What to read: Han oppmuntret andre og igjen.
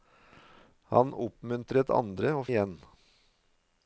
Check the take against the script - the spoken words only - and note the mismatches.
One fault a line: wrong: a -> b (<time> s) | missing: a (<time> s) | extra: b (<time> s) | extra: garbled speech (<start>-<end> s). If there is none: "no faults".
no faults